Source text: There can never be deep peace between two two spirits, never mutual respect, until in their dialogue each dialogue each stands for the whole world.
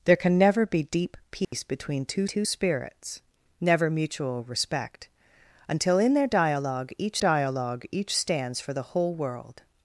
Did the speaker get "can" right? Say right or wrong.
right